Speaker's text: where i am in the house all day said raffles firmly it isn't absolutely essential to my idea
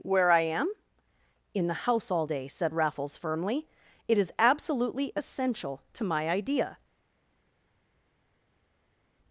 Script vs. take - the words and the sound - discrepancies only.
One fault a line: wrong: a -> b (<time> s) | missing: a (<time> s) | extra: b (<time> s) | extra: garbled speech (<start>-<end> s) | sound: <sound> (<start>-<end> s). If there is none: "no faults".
wrong: isn't -> is (4.2 s)